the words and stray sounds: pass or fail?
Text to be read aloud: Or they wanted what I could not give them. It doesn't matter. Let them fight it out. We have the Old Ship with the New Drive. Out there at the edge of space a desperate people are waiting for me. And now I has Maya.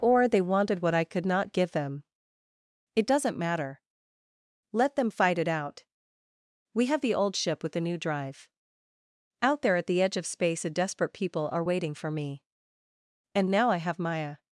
fail